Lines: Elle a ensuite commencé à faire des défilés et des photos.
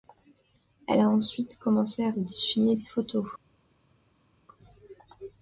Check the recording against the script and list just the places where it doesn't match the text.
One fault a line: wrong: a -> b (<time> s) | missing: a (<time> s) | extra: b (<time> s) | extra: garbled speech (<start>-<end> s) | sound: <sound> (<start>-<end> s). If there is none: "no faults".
missing: faire (2.1 s)